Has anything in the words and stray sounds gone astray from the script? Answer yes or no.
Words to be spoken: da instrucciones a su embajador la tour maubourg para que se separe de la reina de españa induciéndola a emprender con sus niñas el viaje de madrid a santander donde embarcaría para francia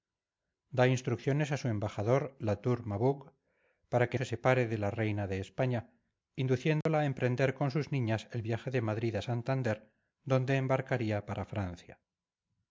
yes